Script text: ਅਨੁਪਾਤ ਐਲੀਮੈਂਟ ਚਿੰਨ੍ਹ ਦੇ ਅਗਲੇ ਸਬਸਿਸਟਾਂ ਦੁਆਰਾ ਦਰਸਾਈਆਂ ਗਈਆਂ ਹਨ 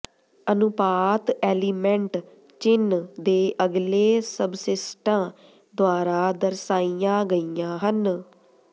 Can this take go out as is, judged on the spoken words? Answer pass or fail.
pass